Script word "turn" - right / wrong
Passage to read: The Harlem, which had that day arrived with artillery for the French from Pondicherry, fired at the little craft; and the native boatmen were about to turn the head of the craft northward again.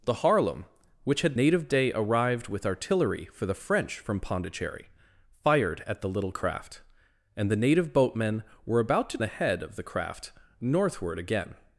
wrong